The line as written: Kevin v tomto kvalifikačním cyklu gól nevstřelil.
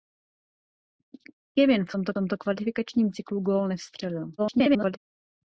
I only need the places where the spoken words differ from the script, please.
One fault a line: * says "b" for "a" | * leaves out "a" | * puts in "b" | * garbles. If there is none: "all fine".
* puts in "tomto"
* garbles